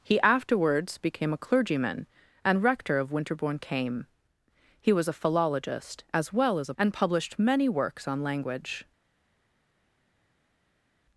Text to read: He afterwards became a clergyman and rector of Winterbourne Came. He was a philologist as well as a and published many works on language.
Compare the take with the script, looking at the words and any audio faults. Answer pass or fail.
pass